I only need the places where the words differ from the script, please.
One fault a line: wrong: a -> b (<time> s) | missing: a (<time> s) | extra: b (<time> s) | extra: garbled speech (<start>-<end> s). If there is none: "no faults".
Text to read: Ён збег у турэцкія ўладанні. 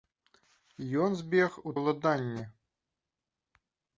missing: турэцкія (1.7 s)